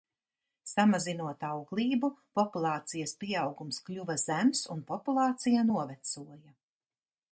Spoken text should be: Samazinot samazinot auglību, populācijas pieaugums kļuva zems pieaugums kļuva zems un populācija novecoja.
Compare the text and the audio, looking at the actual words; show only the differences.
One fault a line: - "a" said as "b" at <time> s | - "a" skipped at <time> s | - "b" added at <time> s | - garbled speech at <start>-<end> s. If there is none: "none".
- "samazinot" skipped at 1.4 s
- "pieaugums kļuva zems" skipped at 4.6 s